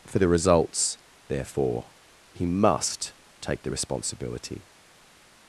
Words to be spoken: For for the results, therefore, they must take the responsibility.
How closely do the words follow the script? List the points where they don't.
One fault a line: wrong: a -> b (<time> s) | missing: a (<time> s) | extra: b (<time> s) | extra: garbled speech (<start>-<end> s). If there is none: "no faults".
missing: for (0.2 s)
wrong: they -> he (2.3 s)